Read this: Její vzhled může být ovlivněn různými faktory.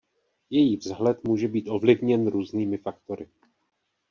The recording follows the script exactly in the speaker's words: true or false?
true